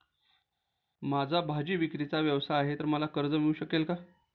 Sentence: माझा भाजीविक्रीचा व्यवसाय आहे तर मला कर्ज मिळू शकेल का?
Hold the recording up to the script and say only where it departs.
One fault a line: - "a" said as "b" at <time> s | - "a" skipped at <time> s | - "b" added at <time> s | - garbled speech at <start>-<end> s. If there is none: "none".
none